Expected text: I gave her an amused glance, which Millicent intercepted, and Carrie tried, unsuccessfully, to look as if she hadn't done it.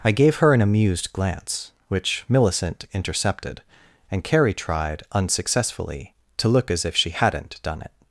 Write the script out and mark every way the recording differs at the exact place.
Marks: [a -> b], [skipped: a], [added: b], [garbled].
I gave her an amused glance, which Millicent intercepted, and Carrie tried, unsuccessfully, to look as if she hadn't done it.